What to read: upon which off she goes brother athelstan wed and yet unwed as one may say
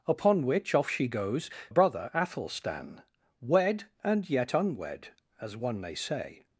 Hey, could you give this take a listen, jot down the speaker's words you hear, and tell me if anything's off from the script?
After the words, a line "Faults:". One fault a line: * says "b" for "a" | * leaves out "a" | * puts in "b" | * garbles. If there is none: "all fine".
upon which off she goes brother athelstan wed and yet unwed as one may say
Faults:
all fine